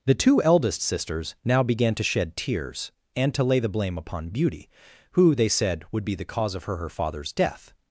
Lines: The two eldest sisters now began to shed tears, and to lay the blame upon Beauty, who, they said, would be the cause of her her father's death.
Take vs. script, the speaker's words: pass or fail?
pass